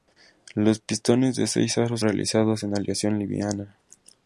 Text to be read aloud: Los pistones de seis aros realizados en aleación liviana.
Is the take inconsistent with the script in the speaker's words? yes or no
no